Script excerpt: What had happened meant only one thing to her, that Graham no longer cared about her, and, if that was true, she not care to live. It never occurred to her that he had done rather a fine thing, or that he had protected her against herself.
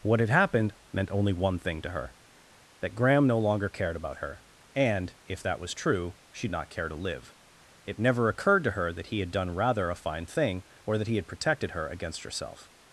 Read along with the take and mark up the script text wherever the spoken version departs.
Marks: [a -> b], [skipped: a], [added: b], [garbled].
What had happened meant only one thing to her, that Graham no longer cared about her, and, if that was true, she not care to live. It never occurred to her that he had done rather a fine thing, or that he had protected her against herself.